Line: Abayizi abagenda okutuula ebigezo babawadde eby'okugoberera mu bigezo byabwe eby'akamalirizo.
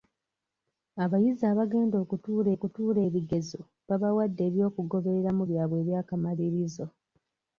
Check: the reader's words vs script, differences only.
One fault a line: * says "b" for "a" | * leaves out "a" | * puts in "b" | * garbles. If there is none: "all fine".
* puts in "okutuula"
* leaves out "bigezo"